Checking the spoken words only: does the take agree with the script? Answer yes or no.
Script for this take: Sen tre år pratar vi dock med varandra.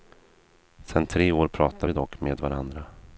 yes